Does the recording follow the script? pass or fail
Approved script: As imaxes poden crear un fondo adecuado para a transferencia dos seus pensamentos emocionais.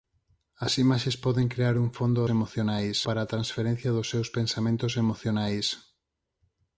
fail